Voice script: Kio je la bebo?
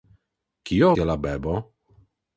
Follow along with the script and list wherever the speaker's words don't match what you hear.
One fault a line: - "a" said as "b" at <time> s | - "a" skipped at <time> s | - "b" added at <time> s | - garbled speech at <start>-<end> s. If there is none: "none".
none